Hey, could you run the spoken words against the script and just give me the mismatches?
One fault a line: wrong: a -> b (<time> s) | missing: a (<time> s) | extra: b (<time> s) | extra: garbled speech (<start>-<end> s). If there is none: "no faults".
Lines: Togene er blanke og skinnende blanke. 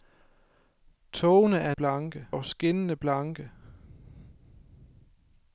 no faults